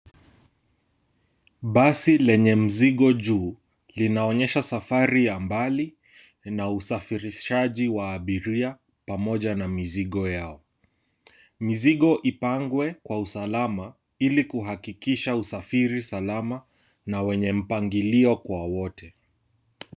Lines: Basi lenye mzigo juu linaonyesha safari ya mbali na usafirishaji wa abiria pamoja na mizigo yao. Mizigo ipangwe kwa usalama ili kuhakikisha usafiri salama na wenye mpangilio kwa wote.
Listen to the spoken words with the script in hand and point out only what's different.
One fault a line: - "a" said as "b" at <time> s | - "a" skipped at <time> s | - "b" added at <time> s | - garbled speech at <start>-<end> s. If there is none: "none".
none